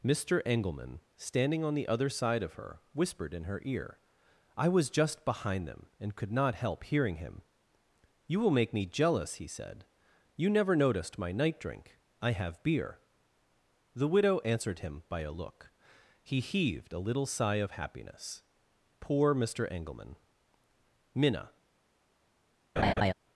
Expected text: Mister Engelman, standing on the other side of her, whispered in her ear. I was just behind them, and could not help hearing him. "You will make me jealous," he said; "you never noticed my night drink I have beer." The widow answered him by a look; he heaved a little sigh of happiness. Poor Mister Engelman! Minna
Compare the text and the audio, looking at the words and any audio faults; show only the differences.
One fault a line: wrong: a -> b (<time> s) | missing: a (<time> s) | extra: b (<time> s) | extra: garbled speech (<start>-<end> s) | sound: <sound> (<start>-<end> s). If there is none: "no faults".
sound: laugh (22.8-23.1 s)